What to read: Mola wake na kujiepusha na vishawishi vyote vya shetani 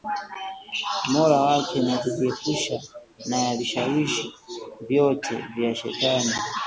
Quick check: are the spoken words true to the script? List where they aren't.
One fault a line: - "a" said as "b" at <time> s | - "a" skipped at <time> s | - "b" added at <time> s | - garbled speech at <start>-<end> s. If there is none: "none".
none